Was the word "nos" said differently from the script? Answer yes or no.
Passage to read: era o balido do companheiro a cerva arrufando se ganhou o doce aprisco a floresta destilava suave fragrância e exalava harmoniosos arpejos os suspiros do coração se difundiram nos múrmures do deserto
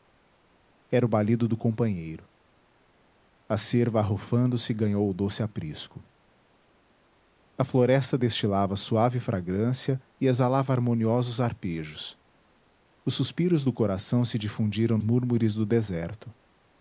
yes